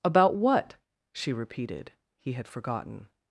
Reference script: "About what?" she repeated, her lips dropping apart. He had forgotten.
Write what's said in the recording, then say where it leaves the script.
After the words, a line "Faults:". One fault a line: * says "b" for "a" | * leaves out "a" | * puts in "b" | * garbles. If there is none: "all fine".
"About what?" she repeated, He had forgotten.
Faults:
* leaves out "her lips dropping apart"